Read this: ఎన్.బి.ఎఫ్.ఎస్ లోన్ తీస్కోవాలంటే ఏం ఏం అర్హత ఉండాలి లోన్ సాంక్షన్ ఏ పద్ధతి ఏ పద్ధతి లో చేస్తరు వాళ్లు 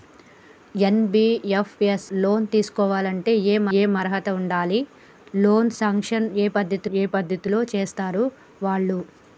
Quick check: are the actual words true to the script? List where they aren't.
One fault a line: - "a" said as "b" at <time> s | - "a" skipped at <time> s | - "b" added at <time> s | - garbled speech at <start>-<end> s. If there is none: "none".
none